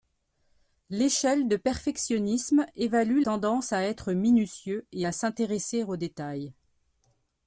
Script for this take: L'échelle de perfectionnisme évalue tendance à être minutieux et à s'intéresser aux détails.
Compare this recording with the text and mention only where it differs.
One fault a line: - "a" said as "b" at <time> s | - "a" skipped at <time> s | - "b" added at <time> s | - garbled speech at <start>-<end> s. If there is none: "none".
none